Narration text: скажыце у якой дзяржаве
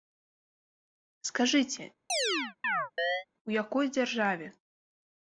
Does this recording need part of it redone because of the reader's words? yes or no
no